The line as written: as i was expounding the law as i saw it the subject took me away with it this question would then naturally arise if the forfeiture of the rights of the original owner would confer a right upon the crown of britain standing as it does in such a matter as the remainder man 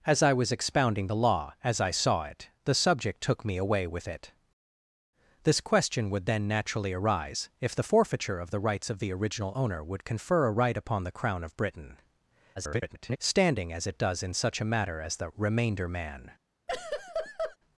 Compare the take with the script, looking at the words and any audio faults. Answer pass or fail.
fail